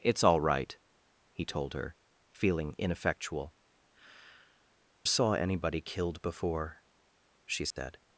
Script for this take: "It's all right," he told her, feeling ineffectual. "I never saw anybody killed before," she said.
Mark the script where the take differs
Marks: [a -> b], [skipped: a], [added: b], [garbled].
"It's all right," he told her, feeling ineffectual. [skipped: "I never] saw anybody killed before," she said.